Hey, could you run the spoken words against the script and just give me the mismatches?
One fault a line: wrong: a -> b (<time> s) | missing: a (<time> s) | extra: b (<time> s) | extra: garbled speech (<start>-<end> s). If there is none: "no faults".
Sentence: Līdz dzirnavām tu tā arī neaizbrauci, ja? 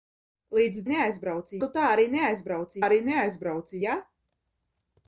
wrong: dzirnavām -> neaizbrauci (0.9 s)
extra: arī neaizbrauci (2.8 s)